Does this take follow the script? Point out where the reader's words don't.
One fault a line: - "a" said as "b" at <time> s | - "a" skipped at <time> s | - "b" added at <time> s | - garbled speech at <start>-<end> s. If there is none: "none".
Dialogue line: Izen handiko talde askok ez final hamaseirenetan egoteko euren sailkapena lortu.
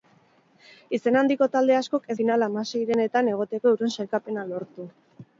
none